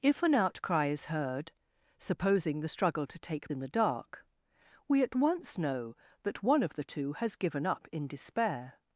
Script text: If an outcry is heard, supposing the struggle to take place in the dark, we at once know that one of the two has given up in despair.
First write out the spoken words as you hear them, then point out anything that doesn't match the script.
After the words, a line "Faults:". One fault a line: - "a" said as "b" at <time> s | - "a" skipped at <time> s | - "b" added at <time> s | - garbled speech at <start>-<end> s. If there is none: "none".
If an outcry is heard, supposing the struggle to take in the dark, we at once know that one of the two has given up in despair.
Faults:
- "place" skipped at 3.5 s